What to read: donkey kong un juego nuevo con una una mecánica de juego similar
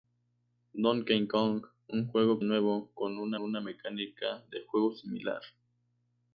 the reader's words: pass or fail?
pass